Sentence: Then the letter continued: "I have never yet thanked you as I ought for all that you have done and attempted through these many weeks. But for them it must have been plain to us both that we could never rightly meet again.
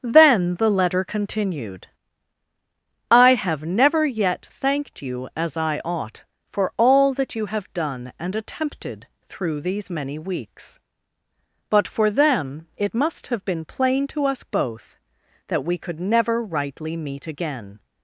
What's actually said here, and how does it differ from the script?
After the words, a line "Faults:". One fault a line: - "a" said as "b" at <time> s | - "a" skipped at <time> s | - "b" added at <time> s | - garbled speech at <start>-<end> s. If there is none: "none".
Then the letter continued: "I have never yet thanked you as I ought for all that you have done and attempted through these many weeks. But for them it must have been plain to us both that we could never rightly meet again.
Faults:
none